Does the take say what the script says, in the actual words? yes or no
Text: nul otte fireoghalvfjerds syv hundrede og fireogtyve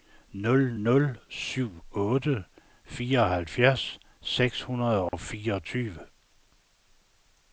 no